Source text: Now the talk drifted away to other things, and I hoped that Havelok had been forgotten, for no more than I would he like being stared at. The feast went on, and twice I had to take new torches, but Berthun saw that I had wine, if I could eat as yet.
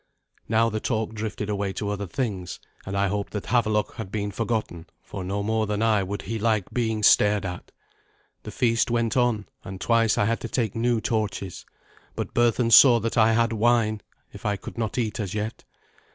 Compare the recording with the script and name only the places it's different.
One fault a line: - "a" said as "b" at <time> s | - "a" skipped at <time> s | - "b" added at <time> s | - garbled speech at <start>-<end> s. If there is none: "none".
- "not" added at 14.8 s